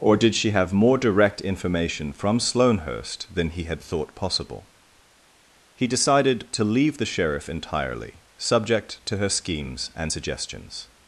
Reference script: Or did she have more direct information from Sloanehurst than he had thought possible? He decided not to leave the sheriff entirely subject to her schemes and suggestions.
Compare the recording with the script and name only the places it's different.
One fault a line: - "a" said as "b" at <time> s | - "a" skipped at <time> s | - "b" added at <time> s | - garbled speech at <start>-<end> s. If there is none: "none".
- "not" skipped at 6.5 s